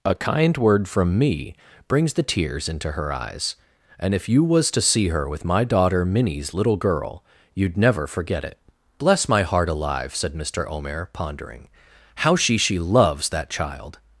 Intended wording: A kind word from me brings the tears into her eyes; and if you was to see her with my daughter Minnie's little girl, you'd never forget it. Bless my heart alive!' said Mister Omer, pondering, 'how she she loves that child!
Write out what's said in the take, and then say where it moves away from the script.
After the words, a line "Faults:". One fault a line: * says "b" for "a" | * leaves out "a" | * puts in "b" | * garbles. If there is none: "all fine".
A kind word from me brings the tears into her eyes; and if you was to see her with my daughter Minnie's little girl, you'd never forget it. Bless my heart alive!' said Mister Omer, pondering, 'how she she loves that child!
Faults:
all fine